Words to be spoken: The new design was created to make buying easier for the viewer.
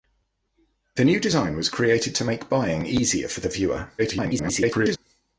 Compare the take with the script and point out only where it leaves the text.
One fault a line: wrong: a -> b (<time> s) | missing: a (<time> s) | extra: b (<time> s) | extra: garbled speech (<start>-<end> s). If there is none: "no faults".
extra: garbled speech (4.0-5.0 s)